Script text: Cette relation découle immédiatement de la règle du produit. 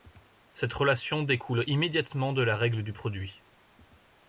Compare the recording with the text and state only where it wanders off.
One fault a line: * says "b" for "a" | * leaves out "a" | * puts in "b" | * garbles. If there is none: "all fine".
all fine